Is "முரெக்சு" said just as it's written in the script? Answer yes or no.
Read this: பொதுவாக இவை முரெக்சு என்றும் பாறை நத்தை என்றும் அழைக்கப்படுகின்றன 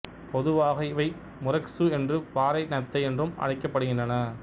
yes